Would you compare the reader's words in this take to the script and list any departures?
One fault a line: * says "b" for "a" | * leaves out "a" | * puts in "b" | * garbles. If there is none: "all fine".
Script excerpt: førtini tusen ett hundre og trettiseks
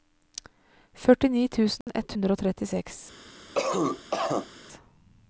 all fine